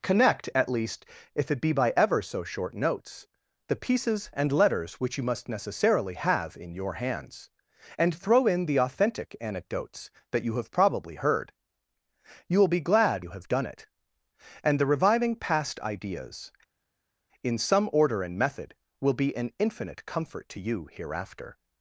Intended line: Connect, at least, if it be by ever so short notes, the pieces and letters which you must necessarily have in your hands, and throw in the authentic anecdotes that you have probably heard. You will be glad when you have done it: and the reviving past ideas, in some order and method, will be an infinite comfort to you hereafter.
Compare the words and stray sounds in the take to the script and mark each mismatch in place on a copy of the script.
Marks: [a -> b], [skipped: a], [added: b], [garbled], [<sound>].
Connect, at least, if it be by ever so short notes, the pieces and letters which you must necessarily have in your hands, and throw in the authentic anecdotes that you have probably heard. You will be glad [skipped: when] you have done it: and the reviving past ideas, in some order and method, will be an infinite comfort to you hereafter.